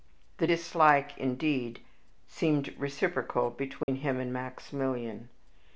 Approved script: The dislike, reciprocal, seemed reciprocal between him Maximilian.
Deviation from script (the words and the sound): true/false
true